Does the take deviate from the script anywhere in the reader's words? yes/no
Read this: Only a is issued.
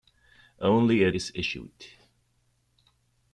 no